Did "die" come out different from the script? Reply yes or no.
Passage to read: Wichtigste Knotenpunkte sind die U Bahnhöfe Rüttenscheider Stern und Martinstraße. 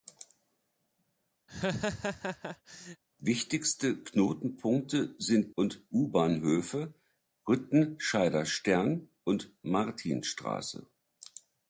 yes